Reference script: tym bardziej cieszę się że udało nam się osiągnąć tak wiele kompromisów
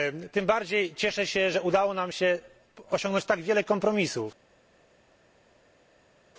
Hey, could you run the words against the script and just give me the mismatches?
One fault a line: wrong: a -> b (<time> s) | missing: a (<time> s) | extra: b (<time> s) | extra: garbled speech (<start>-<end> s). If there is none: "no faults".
no faults